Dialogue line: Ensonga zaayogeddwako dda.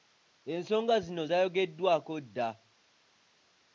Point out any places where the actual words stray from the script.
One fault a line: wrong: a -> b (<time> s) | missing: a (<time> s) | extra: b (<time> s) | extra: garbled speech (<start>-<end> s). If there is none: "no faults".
extra: zino (1.1 s)